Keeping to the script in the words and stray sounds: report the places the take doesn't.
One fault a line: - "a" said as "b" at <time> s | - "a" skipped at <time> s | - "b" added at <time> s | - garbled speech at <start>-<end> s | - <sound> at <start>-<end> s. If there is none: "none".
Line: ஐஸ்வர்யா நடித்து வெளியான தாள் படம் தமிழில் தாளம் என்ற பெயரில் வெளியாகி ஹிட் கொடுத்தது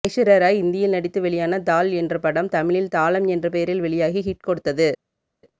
- "ராய் இந்தியில்" added at 0.4 s
- "என்ற" added at 1.9 s